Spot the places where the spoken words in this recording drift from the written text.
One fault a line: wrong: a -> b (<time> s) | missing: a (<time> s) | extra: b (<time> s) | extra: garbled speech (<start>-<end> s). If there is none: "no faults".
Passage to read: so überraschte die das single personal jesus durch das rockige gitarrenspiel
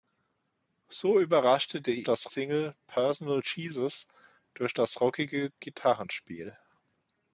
no faults